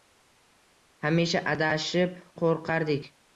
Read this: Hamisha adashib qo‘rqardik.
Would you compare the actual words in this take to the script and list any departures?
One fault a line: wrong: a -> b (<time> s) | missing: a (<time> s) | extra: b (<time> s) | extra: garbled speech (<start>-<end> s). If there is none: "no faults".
no faults